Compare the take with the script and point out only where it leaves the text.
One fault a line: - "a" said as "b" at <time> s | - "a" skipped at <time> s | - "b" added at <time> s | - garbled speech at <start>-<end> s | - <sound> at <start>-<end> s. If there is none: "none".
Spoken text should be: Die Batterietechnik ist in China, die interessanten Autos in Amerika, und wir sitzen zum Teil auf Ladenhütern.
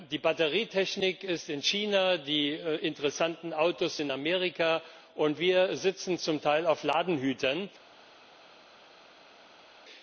none